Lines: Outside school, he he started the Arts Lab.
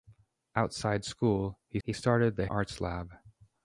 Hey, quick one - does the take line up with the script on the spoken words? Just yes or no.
yes